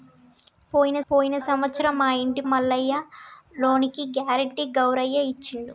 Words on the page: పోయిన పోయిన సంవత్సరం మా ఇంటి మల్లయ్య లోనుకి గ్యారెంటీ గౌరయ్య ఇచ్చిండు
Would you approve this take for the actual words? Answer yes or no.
yes